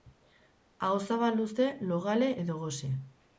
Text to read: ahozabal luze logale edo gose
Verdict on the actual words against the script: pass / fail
pass